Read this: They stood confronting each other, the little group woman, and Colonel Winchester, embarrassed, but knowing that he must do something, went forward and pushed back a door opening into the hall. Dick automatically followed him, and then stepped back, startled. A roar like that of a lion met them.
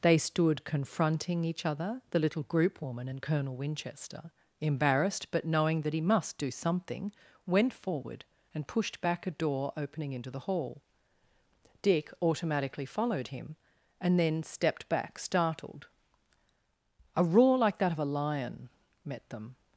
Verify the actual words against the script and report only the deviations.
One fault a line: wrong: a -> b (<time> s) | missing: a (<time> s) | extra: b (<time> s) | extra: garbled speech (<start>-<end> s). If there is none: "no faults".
no faults